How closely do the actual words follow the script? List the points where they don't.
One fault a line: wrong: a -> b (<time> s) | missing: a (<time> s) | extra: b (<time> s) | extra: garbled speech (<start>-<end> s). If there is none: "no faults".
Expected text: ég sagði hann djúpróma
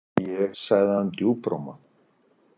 no faults